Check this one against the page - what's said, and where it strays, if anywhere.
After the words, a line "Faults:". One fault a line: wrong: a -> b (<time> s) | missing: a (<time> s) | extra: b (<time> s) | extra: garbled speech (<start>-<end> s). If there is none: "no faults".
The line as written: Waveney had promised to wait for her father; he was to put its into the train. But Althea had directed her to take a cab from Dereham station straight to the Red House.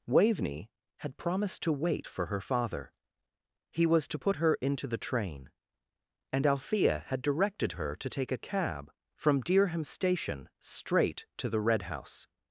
Waveney had promised to wait for her father; he was to put her into the train. And Althea had directed her to take a cab from Dereham station straight to the Red House.
Faults:
wrong: its -> her (4.4 s)
wrong: But -> And (6.3 s)